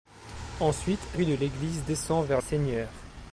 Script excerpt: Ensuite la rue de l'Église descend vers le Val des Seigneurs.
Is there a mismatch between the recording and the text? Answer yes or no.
yes